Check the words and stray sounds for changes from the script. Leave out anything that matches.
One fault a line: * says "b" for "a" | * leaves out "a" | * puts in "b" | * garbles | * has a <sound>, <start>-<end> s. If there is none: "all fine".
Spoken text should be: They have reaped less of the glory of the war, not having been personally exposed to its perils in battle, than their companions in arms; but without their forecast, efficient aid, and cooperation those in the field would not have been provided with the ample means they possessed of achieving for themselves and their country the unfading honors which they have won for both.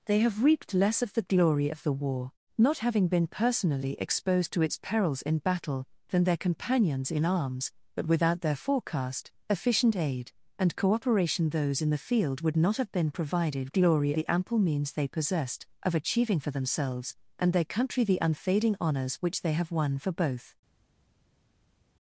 * says "glory" for "with"